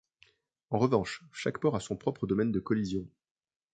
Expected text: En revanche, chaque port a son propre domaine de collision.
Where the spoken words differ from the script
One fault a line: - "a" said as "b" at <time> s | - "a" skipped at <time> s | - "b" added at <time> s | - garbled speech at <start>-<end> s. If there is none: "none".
none